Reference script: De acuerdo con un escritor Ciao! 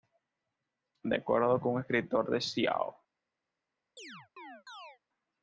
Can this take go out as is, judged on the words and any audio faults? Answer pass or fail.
fail